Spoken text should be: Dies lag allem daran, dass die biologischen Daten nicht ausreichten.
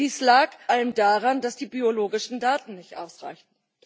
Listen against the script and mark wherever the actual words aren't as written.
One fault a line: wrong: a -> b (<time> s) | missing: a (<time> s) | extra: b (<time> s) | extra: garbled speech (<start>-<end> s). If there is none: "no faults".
no faults